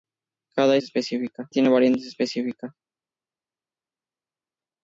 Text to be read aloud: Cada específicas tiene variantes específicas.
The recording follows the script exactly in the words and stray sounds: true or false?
true